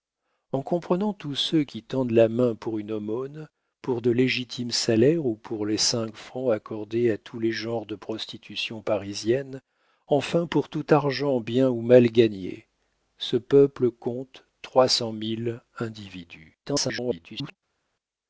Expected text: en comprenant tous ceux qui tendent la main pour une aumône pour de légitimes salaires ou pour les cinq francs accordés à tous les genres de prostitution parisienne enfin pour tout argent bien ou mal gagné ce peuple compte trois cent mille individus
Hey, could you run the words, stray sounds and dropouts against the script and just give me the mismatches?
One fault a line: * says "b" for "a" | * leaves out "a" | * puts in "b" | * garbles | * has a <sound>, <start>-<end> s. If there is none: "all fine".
* garbles